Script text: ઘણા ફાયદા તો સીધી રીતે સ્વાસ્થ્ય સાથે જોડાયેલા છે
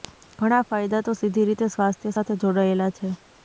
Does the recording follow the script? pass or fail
pass